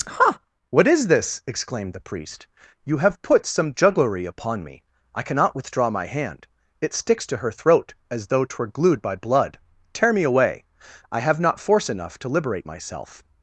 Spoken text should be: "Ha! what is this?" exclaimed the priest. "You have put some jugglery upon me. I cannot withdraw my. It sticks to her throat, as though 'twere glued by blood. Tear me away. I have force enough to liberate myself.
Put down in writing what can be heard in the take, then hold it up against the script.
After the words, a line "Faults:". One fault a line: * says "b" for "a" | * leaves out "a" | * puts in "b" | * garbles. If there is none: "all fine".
"Ha! what is this?" exclaimed the priest. "You have put some jugglery upon me. I cannot withdraw my hand. It sticks to her throat, as though 'twere glued by blood. Tear me away. I have not force enough to liberate myself.
Faults:
* puts in "hand"
* puts in "not"